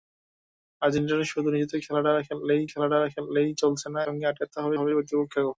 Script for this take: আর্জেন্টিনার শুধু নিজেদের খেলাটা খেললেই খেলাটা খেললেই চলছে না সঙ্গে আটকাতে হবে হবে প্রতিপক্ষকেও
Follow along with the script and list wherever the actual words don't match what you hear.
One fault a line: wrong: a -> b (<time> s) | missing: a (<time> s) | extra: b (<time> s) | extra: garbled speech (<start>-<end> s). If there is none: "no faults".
no faults